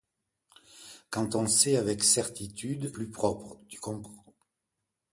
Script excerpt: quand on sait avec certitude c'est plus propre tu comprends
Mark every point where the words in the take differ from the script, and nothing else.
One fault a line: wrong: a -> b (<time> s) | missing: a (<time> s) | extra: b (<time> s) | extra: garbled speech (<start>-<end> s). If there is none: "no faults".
missing: c'est (3.0 s)